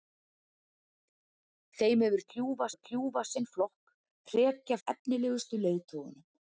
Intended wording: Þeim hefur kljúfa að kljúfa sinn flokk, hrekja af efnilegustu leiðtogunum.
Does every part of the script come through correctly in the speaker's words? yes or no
yes